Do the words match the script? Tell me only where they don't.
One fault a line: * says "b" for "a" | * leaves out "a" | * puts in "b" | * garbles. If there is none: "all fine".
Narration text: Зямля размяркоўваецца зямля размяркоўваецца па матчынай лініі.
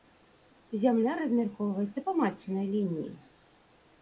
* leaves out "зямля размяркоўваецца"